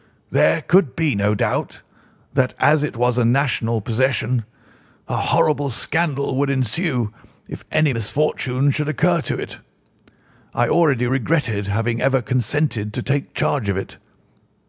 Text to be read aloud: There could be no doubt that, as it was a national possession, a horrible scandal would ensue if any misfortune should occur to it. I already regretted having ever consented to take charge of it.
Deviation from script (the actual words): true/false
false